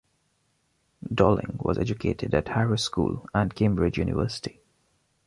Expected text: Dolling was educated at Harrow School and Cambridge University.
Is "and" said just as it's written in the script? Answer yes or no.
yes